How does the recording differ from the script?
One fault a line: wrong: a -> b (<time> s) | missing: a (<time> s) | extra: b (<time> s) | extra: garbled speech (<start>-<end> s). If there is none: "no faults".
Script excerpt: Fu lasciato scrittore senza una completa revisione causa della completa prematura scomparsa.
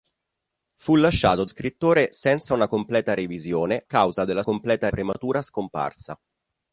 no faults